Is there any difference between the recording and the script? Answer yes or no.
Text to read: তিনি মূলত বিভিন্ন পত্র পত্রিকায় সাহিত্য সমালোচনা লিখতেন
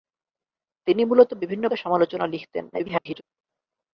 yes